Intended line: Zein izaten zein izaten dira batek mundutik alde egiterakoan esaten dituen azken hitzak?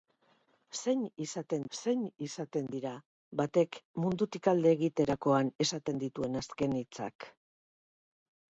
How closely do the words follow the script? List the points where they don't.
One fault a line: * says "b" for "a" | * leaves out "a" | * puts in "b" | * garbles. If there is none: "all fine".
all fine